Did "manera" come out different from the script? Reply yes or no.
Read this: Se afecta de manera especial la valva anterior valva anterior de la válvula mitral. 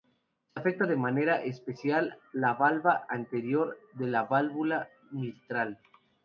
no